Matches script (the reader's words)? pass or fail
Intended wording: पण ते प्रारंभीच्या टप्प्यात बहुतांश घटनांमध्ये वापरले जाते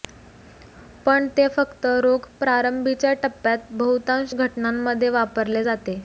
fail